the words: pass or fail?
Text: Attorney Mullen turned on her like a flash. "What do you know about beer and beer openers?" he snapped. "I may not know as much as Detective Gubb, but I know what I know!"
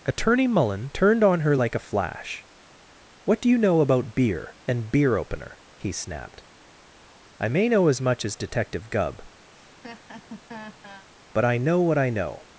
fail